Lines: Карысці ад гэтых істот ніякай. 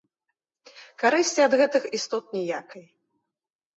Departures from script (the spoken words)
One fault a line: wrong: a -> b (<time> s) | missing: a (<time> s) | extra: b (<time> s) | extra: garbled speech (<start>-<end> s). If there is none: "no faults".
no faults